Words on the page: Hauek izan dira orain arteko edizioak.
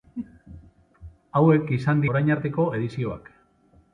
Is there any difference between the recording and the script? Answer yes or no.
yes